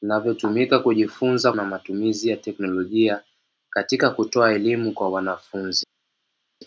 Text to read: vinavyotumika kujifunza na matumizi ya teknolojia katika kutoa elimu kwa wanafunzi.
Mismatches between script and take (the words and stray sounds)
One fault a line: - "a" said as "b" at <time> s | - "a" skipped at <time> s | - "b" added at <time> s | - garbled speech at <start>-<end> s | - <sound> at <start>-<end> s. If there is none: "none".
none